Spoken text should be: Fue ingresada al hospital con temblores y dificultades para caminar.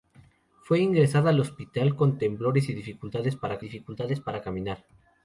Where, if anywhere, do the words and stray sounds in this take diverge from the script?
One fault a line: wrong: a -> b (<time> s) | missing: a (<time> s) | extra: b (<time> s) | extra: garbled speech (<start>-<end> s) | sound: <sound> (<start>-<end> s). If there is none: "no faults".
extra: dificultades para (3.6 s)